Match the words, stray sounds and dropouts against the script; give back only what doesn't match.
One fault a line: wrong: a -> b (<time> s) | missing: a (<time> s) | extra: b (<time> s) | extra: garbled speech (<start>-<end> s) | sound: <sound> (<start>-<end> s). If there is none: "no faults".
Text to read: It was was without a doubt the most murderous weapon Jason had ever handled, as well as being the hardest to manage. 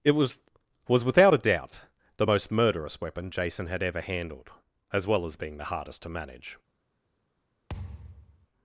sound: thud (7.7-8.5 s)